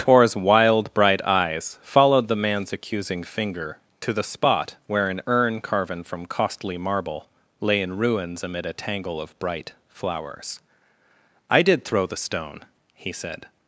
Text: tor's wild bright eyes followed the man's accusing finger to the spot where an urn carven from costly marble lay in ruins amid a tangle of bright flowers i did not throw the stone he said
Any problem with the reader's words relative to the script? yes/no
yes